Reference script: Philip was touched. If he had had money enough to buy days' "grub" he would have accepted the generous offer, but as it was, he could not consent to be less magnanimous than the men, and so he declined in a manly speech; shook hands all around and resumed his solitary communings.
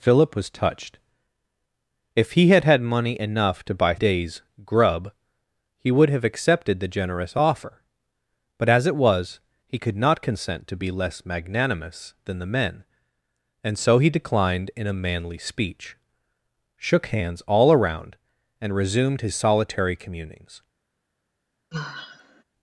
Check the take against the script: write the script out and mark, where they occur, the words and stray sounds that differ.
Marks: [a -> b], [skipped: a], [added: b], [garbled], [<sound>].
Philip was touched. If he had had money enough to buy days' "grub" he would have accepted the generous offer, but as it was, he could not consent to be less magnanimous than the men, and so he declined in a manly speech; shook hands all around and resumed his solitary communings. [sigh]